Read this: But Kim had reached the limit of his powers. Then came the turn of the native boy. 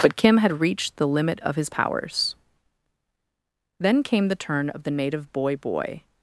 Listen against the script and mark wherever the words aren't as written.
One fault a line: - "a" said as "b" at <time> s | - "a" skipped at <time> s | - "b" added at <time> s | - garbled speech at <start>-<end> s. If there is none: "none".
- "boy" added at 5.6 s